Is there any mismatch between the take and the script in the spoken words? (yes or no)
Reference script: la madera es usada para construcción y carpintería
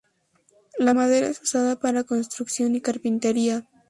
no